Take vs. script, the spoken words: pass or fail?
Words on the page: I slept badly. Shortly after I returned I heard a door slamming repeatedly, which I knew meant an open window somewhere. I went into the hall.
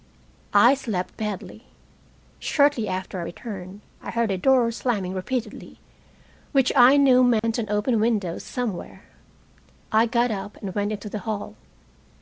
fail